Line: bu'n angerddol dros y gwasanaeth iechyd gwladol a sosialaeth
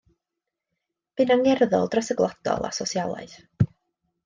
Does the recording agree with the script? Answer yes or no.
no